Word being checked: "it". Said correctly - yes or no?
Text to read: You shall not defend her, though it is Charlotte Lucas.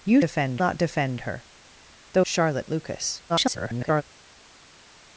no